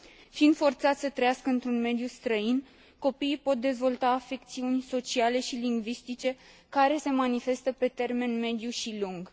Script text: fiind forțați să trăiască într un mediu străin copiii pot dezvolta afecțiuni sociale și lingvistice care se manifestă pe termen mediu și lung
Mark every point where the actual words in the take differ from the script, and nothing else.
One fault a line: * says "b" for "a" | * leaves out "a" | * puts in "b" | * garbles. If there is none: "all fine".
all fine